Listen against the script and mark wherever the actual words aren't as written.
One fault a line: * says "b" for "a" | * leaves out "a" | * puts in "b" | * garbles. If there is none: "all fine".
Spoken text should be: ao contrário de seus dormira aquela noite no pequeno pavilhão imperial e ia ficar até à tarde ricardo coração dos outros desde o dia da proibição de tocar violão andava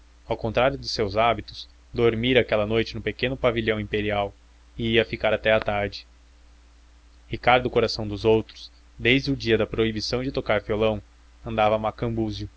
* puts in "hábitos"